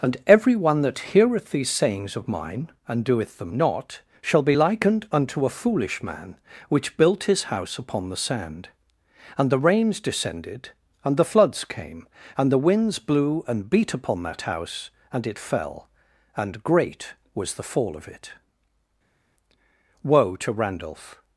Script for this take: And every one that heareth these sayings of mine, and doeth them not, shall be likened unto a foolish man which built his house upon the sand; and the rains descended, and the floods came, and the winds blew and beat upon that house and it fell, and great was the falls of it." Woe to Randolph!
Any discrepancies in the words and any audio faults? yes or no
yes